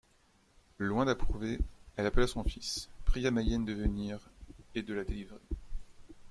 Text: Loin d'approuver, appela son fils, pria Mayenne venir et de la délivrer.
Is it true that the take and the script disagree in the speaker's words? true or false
true